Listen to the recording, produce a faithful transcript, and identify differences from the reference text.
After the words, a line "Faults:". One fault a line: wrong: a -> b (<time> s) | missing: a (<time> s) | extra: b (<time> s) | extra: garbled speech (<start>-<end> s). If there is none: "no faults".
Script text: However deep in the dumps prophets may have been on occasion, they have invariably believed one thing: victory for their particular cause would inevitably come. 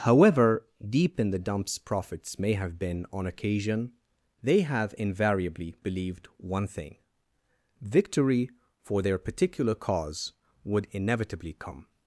However deep in the dumps prophets may have been on occasion, they have invariably believed one thing: victory for their particular cause would inevitably come.
Faults:
no faults